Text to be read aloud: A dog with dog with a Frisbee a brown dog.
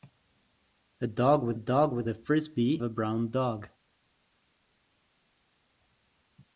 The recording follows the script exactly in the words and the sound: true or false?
true